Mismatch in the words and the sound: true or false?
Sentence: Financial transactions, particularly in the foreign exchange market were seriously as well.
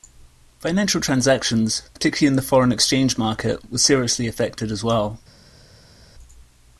true